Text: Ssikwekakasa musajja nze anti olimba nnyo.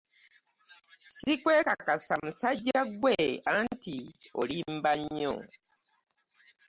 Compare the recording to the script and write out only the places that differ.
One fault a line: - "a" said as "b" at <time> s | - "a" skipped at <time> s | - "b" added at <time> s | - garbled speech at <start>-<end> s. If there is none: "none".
- "nze" said as "ggwe" at 2.9 s